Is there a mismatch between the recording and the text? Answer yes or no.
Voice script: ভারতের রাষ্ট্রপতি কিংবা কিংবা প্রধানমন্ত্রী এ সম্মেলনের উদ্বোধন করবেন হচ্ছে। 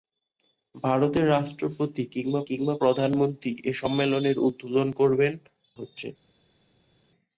no